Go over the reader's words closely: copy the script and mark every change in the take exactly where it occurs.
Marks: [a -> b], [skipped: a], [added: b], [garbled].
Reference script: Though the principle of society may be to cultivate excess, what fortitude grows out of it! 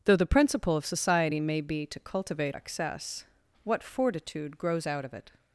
Though the principle of society may be to cultivate excess, what fortitude grows out of it!